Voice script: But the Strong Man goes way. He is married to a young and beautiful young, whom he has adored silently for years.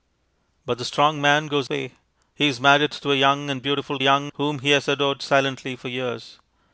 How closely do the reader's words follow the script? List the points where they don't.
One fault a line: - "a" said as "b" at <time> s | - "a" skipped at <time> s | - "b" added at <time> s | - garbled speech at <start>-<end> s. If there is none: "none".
none